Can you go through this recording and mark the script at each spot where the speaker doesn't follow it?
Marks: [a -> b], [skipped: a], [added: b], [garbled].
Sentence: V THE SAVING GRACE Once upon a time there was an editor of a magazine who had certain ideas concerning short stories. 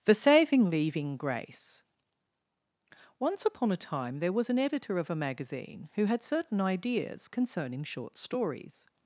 [skipped: V] THE SAVING [added: leaving] GRACE Once upon a time there was an editor of a magazine who had certain ideas concerning short stories.